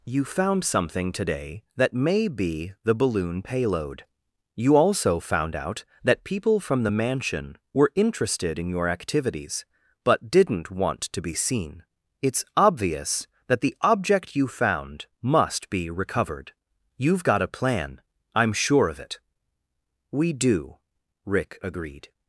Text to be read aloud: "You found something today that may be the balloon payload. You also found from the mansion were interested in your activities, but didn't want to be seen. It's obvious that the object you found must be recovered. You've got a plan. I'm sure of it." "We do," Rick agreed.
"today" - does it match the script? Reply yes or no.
yes